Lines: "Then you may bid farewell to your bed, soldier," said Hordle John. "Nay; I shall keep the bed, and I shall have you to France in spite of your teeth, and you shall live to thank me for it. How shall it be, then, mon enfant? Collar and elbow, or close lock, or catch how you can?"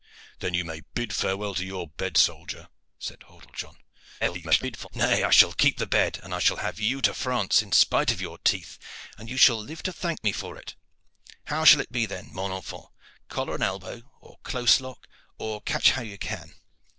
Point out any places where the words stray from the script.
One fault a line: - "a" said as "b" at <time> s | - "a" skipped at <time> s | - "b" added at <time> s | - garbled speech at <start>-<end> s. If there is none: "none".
- garbled speech at 4.2-4.9 s